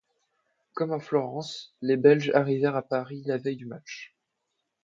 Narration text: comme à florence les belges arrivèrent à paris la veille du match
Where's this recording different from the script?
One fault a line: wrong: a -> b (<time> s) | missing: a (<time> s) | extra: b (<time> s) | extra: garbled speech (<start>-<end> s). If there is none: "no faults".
no faults